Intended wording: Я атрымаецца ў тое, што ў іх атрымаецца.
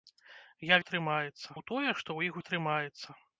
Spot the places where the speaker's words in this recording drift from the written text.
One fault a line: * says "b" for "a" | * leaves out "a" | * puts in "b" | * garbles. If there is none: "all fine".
all fine